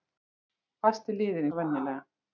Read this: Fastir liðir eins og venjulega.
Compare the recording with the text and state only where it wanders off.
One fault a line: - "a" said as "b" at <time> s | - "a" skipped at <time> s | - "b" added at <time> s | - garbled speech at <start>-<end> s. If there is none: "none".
- "eins" skipped at 1.5 s